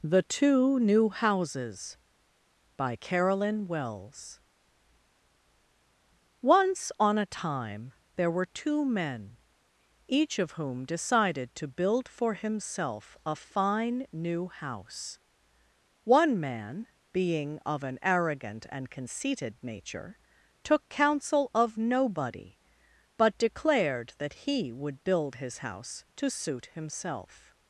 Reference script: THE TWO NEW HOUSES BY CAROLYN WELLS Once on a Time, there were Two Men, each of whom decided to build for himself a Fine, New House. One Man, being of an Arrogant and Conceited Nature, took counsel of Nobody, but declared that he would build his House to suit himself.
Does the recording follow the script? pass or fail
pass